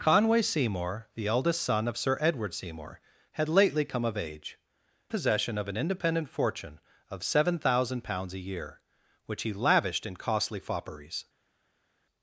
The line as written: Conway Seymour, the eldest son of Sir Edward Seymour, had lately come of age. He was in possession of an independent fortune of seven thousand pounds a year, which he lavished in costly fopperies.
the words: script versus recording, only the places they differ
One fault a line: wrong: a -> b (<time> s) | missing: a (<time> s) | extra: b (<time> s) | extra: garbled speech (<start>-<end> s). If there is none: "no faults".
missing: He was in (4.6 s)